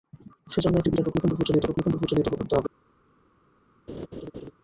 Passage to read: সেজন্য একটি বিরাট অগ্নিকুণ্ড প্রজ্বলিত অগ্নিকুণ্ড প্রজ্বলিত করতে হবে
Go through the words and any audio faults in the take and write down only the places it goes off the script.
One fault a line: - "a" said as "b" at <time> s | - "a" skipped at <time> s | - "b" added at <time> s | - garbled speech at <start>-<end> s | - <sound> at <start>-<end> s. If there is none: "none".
- laugh at 3.9-4.5 s